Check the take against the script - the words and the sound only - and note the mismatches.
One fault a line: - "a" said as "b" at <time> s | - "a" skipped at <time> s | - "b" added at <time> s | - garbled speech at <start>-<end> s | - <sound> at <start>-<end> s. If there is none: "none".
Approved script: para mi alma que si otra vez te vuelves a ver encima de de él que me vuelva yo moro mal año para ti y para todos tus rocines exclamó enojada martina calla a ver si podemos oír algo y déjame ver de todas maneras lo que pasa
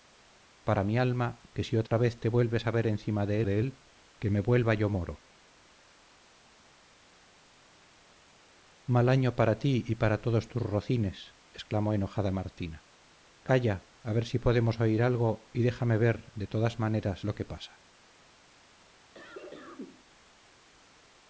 - dropout at 1.9-1.9 s
- cough at 19.1-20.0 s